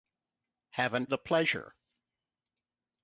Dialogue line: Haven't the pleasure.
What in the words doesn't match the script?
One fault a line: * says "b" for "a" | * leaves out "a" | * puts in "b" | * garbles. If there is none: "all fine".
all fine